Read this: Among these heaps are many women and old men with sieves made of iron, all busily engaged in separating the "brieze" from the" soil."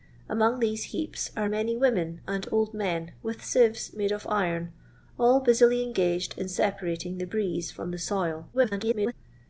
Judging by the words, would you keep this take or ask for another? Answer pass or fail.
fail